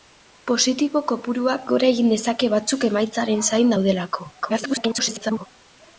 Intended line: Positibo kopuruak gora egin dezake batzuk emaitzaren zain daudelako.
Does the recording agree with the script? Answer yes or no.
no